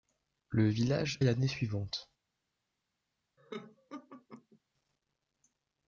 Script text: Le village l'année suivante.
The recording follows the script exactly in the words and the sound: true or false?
false